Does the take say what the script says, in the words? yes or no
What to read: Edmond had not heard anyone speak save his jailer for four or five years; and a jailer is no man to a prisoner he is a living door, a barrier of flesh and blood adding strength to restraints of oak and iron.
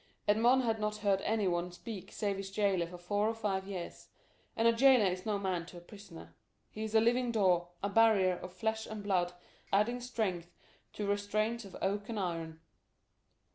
yes